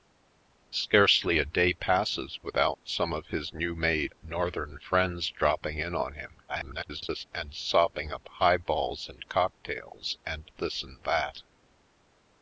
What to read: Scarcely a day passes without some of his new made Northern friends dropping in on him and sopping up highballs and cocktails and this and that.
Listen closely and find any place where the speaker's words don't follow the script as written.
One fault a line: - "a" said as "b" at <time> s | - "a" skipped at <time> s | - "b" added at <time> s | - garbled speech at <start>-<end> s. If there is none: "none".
- garbled speech at 6.5-7.2 s